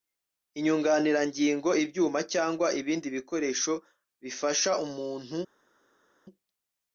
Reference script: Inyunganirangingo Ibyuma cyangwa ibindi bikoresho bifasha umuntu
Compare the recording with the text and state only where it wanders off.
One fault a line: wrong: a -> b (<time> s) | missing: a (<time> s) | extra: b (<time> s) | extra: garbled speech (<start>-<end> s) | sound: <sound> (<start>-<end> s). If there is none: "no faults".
no faults